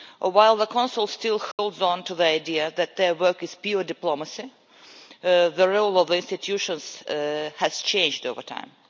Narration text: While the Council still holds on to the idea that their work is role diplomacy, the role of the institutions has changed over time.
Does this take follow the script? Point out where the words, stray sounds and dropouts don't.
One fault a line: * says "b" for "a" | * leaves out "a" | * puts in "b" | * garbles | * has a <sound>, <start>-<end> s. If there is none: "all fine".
* has a dropout, 1.5-1.6 s
* says "pure" for "role"